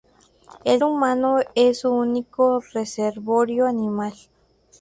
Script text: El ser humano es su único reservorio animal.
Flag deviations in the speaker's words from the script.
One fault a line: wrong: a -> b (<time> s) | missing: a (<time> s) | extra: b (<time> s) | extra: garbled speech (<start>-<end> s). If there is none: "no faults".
missing: ser (0.8 s)